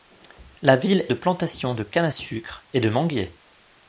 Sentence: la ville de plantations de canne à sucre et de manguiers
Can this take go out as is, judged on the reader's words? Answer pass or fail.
pass